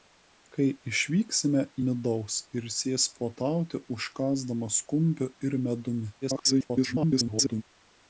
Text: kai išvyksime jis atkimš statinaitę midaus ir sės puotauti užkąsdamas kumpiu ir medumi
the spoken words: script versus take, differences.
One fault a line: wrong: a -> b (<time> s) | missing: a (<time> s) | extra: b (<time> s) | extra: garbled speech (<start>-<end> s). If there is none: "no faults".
missing: jis atkimš statinaitę (1.6 s)
extra: garbled speech (6.2-7.6 s)